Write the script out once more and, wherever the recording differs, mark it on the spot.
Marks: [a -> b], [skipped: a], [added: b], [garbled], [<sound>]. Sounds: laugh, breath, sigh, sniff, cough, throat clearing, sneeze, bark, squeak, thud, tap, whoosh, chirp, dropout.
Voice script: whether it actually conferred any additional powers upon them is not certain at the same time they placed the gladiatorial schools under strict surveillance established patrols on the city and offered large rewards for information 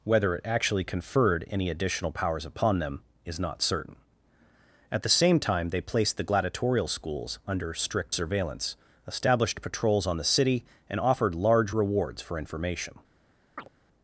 whether it actually conferred any additional powers upon them is not certain at the same time they placed the gladiatorial schools under strict surveillance established patrols on the city and offered large rewards for information [chirp]